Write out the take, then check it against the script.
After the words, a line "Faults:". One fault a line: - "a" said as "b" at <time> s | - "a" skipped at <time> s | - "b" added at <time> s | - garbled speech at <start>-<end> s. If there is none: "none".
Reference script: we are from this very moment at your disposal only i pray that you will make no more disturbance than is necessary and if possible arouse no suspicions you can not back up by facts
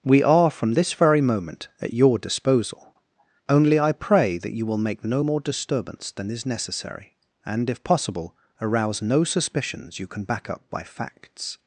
we are from this very moment at your disposal only i pray that you will make no more disturbance than is necessary and if possible arouse no suspicions you can back up by facts
Faults:
- "not" skipped at 10.2 s